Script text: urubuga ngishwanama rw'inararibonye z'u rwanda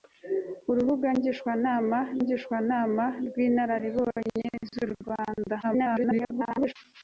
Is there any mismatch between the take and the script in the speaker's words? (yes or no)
yes